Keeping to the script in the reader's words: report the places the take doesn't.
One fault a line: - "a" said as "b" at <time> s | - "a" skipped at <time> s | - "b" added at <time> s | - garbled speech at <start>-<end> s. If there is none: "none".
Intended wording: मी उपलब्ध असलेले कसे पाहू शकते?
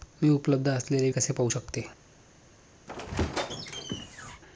none